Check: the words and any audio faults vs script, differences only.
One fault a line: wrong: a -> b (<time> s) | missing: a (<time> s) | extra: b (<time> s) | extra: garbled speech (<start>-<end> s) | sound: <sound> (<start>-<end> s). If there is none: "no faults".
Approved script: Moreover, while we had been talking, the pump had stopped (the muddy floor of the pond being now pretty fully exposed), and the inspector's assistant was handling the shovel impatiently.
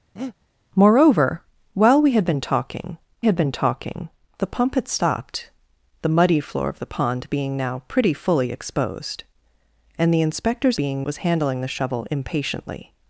sound: breath (0.2-0.4 s)
extra: had been talking (3.2 s)
wrong: assistant -> being (10.8 s)